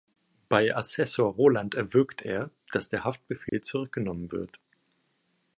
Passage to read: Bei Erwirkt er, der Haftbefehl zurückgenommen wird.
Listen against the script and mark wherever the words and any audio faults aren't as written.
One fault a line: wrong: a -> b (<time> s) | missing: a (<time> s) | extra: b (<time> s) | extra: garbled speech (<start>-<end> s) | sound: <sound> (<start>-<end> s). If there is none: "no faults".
extra: Assessor Roland (0.8 s)
extra: dass (2.7 s)
sound: dropout (3.5-3.5 s)